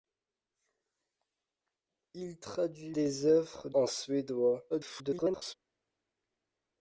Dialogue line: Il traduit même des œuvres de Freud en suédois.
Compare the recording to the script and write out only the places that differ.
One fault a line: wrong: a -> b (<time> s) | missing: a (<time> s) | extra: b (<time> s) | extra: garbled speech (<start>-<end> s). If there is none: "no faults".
missing: même (3.0 s)
missing: de Freud (3.7 s)
extra: garbled speech (4.7-5.5 s)